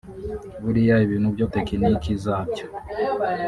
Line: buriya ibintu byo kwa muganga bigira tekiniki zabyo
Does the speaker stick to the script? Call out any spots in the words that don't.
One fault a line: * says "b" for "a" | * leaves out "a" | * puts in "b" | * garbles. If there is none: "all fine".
* leaves out "kwa muganga bigira"